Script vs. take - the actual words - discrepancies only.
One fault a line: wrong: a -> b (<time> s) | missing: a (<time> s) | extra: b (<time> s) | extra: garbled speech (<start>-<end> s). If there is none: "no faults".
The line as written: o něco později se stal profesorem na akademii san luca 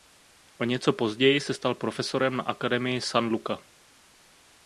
no faults